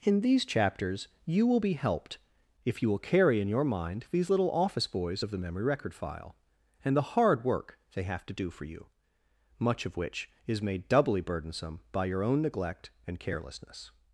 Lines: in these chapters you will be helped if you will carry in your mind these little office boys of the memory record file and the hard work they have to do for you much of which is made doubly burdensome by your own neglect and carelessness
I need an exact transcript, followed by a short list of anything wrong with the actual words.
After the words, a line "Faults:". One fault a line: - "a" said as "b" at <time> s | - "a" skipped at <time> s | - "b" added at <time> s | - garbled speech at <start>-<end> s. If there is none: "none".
in these chapters you will be helped if you will carry in your mind these little office boys of the memory record file and the hard work they have to do for you much of which is made doubly burdensome by your own neglect and carelessness
Faults:
none